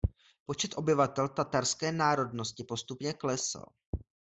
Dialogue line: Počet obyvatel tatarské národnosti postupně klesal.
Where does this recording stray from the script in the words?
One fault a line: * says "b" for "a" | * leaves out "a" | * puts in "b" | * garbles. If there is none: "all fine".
all fine